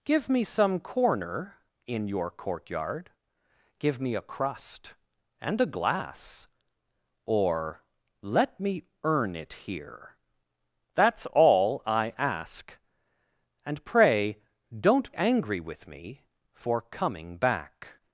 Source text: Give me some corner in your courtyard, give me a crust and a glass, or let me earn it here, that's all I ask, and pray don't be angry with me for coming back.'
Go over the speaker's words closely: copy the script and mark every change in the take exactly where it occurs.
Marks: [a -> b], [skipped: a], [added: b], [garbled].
Give me some corner in your courtyard, give me a crust and a glass, or let me earn it here, that's all I ask, and pray don't [skipped: be] angry with me for coming back.'